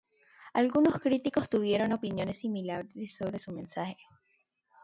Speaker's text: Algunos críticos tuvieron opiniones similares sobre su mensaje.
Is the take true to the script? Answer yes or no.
yes